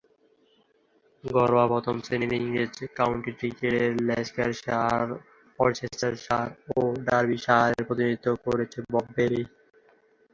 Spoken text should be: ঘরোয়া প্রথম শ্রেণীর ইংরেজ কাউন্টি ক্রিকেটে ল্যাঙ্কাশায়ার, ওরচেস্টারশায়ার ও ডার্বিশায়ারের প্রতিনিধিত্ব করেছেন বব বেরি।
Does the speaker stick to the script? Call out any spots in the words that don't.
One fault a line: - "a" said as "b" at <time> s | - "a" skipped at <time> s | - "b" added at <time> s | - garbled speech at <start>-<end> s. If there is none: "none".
none